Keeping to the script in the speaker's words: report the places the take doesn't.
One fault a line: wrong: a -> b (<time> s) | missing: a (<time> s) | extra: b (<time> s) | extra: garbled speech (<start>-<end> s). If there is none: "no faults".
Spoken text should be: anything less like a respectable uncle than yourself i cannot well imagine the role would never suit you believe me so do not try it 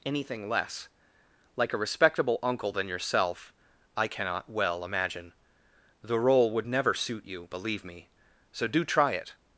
missing: not (8.8 s)